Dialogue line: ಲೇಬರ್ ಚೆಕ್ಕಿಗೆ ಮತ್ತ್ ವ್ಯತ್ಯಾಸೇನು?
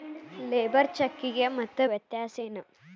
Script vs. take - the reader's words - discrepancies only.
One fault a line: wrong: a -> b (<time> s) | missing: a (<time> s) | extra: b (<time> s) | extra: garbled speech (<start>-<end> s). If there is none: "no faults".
no faults